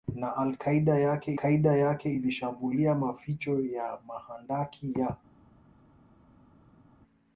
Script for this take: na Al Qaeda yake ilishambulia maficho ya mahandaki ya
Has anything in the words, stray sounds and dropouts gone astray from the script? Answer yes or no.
yes